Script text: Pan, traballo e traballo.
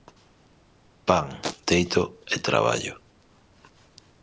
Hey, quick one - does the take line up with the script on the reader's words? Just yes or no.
no